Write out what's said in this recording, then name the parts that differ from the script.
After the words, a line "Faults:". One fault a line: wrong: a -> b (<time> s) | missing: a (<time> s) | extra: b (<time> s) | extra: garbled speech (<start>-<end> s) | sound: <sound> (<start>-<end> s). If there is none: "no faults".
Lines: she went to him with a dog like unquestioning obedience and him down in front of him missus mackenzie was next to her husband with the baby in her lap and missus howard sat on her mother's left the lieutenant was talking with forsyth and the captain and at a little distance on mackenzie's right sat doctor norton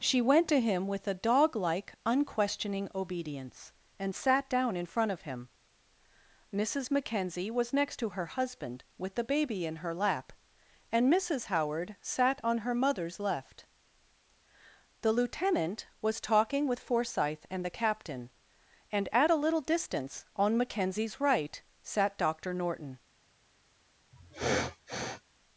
she went to him with a dog like unquestioning obedience and sat down in front of him missus mackenzie was next to her husband with the baby in her lap and missus howard sat on her mother's left the lieutenant was talking with forsyth and the captain and at a little distance on mackenzie's right sat doctor norton
Faults:
wrong: him -> sat (4.2 s)
sound: sniff (24.1-25.2 s)